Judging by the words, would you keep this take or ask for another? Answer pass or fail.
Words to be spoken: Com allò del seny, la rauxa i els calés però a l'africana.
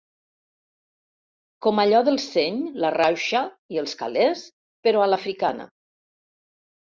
pass